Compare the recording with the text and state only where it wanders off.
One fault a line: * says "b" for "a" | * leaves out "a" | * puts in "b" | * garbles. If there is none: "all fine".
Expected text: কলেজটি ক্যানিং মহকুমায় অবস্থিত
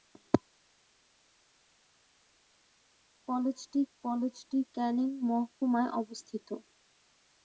* puts in "কলেজটি"